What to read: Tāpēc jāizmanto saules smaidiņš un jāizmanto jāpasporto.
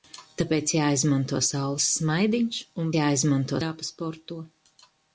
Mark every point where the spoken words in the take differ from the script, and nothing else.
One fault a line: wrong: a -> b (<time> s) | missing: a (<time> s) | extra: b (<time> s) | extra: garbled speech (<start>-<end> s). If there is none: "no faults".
no faults